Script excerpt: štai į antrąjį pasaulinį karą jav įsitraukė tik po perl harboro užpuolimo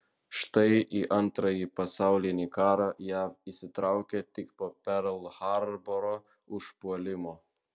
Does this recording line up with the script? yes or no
yes